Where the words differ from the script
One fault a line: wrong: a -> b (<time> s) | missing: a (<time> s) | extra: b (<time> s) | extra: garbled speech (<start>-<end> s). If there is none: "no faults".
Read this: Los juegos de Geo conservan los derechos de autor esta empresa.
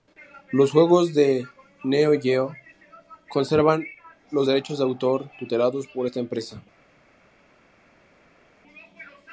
extra: Neo (1.8 s)
extra: tutelados por (5.4 s)